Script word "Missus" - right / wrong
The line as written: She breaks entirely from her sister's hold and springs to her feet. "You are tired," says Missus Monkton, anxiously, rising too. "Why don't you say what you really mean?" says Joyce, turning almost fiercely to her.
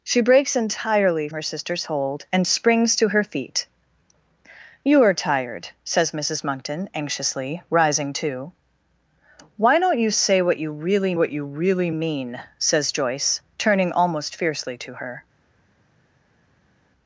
right